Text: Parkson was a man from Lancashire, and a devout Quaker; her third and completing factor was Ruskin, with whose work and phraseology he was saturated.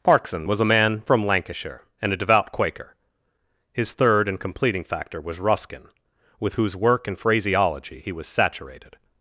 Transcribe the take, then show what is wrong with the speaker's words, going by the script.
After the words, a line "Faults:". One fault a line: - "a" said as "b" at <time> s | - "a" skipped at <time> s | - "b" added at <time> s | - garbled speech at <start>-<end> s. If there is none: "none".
Parkson was a man from Lancashire, and a devout Quaker; his third and completing factor was Ruskin, with whose work and phraseology he was saturated.
Faults:
- "her" said as "his" at 3.7 s